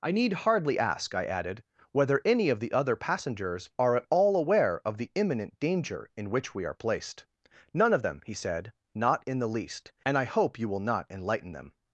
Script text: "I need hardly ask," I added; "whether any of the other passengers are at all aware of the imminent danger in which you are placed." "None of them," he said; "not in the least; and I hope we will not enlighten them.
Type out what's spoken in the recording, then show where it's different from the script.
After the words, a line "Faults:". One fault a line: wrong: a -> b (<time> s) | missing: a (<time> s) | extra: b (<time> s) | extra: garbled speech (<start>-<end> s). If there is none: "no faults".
"I need hardly ask," I added; "whether any of the other passengers are at all aware of the imminent danger in which we are placed." "None of them," he said; "not in the least; and I hope you will not enlighten them.
Faults:
wrong: you -> we (6.5 s)
wrong: we -> you (10.6 s)